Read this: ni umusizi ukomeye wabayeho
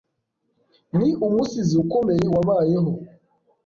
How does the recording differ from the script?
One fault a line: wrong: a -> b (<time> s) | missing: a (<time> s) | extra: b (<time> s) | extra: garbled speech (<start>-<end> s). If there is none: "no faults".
no faults